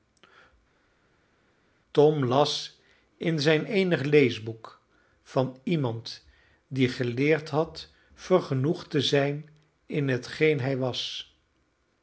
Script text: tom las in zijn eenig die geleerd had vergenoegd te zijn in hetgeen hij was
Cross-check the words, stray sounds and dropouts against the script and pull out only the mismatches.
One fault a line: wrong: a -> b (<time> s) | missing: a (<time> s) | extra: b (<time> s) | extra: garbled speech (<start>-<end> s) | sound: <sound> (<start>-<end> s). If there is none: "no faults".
extra: leesboek van iemand (4.0 s)